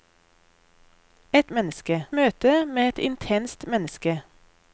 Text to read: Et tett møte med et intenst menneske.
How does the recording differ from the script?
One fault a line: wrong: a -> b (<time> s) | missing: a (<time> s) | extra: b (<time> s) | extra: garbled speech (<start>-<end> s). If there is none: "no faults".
wrong: tett -> menneske (1.5 s)